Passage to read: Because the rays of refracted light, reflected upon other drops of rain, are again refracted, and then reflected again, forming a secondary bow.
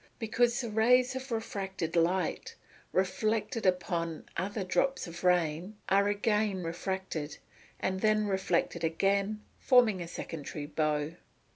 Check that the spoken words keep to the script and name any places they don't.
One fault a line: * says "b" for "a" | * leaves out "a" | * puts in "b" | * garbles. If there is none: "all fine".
all fine